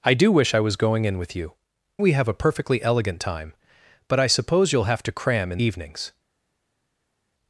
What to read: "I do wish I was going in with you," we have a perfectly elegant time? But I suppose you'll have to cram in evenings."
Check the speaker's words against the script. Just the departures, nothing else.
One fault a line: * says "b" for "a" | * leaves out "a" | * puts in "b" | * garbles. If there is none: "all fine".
all fine